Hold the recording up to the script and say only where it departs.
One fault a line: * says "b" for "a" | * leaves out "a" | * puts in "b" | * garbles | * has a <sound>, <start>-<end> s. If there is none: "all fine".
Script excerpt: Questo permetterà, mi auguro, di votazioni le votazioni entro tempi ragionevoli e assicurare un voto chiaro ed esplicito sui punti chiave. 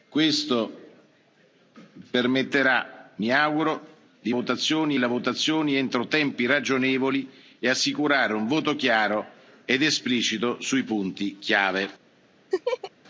* has a laugh, 12.5-12.9 s